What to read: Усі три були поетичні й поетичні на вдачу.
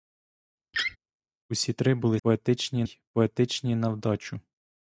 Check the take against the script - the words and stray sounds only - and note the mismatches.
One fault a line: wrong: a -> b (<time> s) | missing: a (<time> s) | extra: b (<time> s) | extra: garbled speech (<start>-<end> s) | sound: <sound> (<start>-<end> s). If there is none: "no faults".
sound: laugh (0.7-1.0 s)